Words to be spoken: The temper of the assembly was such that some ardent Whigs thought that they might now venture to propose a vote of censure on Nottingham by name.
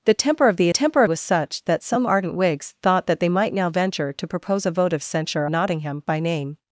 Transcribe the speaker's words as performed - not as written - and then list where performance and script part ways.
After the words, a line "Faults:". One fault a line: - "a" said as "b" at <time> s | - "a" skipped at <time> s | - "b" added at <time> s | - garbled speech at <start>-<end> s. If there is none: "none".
The temper of the temper was such that some ardent Whigs thought that they might now venture to propose a vote of censure Nottingham by name.
Faults:
- "assembly" said as "temper" at 0.7 s
- "on" skipped at 5.5 s